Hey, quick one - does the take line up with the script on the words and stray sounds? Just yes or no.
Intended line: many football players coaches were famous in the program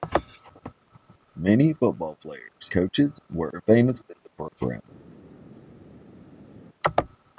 yes